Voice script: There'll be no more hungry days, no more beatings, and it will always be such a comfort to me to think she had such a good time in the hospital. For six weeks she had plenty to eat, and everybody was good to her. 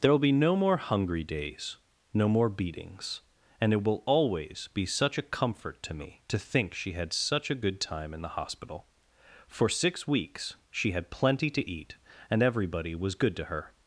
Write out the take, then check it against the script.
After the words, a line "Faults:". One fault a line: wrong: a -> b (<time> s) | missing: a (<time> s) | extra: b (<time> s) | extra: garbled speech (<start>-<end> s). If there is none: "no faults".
There'll be no more hungry days, no more beatings, and it will always be such a comfort to me to think she had such a good time in the hospital. For six weeks she had plenty to eat, and everybody was good to her.
Faults:
no faults